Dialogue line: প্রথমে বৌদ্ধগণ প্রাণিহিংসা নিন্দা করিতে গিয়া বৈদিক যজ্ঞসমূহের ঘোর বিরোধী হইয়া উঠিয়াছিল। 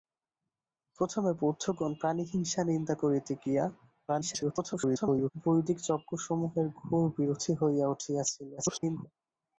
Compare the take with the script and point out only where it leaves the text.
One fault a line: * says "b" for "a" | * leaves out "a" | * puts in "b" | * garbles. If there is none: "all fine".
* garbles
* garbles